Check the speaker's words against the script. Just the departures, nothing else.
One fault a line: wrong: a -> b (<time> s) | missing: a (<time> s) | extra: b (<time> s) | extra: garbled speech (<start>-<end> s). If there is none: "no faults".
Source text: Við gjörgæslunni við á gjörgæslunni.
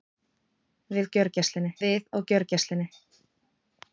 no faults